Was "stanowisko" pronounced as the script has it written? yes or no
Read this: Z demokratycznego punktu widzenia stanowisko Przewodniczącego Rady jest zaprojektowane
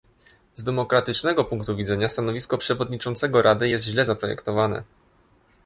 yes